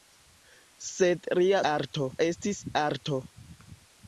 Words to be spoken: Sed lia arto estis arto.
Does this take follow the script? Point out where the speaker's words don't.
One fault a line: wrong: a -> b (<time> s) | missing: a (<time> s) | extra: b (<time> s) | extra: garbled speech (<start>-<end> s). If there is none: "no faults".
no faults